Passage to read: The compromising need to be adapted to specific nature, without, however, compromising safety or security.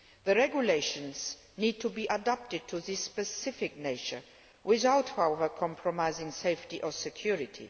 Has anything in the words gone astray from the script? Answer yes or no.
yes